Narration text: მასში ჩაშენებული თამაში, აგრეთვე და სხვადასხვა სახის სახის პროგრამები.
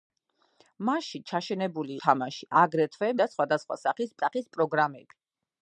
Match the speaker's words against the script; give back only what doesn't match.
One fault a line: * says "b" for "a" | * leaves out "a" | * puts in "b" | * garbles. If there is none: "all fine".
all fine